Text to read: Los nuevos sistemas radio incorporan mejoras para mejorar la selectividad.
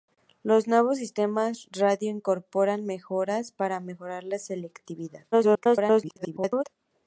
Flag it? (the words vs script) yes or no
yes